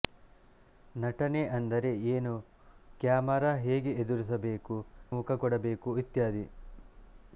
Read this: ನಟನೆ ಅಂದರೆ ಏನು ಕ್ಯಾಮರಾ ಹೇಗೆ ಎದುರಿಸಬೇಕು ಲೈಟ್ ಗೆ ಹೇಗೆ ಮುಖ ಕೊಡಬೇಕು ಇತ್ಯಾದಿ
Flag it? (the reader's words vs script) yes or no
yes